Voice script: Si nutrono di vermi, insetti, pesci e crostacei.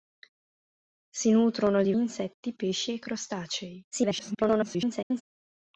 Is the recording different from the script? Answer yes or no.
yes